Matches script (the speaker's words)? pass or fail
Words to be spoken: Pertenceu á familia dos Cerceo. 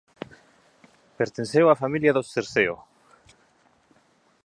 pass